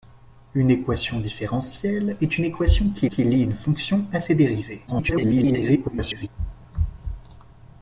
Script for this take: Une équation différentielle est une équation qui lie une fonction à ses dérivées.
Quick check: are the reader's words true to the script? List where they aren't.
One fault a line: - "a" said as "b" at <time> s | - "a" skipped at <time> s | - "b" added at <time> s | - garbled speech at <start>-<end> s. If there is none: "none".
- "qui" added at 3.0 s
- garbled speech at 4.9-6.3 s